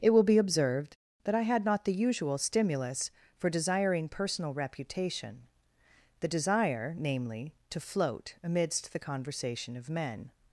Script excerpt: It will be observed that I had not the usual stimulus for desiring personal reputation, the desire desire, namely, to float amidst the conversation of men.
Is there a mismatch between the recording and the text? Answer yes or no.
yes